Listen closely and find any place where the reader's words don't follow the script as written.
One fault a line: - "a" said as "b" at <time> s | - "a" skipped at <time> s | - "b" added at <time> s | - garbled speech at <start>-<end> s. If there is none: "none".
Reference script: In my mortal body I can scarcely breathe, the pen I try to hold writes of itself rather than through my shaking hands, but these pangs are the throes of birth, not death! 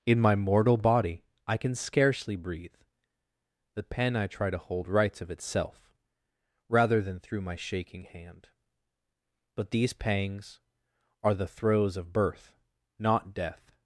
- "hands" said as "hand" at 8.1 s